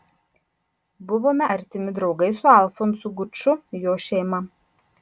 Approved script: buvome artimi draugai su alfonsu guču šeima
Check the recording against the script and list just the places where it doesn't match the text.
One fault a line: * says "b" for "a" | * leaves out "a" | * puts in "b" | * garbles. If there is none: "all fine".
* puts in "jo"